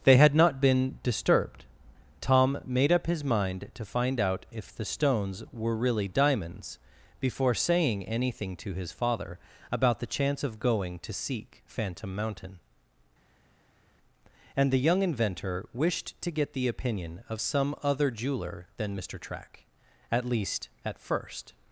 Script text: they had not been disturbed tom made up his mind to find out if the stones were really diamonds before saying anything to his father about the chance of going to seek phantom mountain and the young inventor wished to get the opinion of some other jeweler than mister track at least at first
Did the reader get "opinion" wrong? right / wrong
right